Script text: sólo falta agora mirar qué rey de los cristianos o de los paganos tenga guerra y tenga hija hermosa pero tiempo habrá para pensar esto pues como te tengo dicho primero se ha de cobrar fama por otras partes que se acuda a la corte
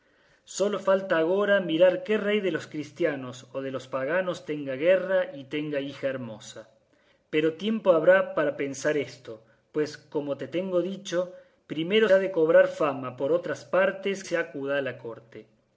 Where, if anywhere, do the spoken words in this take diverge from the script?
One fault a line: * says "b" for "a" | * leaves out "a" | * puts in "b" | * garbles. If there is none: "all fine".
* leaves out "se"
* leaves out "que"